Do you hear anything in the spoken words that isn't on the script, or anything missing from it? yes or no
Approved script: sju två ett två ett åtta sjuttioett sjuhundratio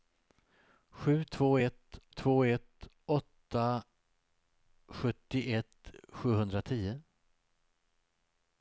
no